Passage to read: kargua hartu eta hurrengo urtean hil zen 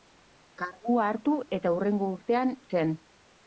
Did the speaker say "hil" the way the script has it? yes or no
no